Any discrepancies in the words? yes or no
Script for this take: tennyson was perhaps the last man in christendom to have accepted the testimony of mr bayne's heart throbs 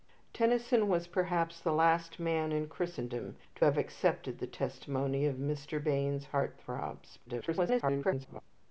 yes